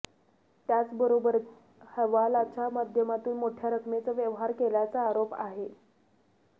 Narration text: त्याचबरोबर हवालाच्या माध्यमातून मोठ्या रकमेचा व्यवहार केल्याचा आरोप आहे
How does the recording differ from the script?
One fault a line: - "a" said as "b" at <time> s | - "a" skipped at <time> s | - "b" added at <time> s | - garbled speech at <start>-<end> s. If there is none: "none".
none